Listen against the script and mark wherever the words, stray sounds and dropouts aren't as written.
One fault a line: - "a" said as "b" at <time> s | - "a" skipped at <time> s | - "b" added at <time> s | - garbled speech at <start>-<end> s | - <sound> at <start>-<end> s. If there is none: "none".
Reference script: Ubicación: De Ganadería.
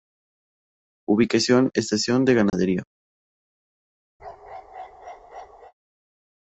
- "Estación" added at 1.8 s
- dropout at 2.5-2.5 s
- bark at 4.2-5.7 s